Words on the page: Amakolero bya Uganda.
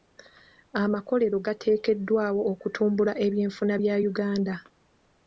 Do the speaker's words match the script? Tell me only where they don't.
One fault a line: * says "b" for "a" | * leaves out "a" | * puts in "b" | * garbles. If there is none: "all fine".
* puts in "gateekeddwawo okutumbula ebyenfuna"